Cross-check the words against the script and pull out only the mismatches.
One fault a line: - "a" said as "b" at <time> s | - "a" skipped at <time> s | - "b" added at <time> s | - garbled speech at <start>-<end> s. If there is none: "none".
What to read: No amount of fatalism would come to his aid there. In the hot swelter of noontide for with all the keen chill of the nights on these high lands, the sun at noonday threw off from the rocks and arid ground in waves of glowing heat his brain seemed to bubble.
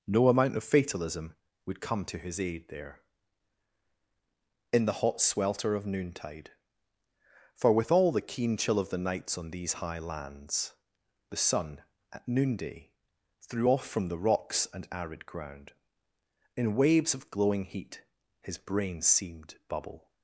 - "to" skipped at 19.6 s